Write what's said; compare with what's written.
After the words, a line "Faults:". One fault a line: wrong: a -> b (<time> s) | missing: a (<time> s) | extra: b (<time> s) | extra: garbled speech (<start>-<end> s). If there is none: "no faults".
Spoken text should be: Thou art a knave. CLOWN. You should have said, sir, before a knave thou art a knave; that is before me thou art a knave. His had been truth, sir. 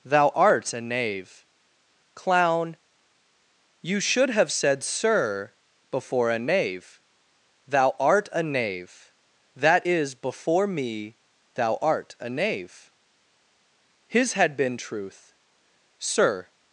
Thou art a knave. CLOWN. You should have said, sir, before a knave thou art a knave; that is before me thou art a knave. His had been truth, sir.
Faults:
no faults